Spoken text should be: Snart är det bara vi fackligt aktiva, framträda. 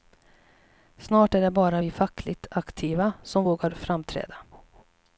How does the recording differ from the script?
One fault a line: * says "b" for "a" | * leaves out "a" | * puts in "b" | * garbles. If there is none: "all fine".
* puts in "som vågar"